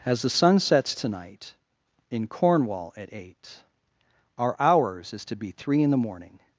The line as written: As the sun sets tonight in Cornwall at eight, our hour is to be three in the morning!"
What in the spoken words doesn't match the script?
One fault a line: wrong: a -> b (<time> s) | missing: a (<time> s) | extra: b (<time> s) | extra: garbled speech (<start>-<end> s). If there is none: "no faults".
wrong: hour -> hours (4.6 s)